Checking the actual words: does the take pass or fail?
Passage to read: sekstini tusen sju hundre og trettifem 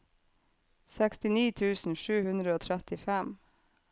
pass